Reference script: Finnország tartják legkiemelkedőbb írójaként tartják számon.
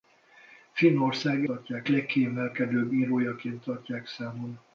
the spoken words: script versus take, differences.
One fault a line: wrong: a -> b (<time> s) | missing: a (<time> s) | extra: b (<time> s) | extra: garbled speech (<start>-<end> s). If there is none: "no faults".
no faults